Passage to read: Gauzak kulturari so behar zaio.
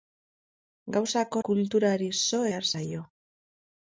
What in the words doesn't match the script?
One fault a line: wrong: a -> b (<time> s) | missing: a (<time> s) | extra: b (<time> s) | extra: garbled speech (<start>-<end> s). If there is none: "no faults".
no faults